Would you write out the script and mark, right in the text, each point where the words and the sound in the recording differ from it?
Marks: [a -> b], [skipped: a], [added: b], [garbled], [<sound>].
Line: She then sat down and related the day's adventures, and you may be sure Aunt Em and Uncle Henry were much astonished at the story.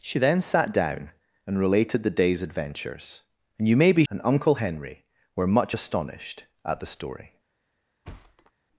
She then sat down and related the day's adventures, and you may be [skipped: sure Aunt Em] and Uncle Henry were much astonished at the story. [thud]